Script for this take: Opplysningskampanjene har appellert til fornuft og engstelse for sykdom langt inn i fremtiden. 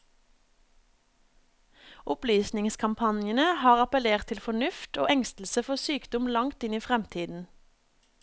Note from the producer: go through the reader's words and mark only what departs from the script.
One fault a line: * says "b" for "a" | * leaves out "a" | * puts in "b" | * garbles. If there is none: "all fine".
all fine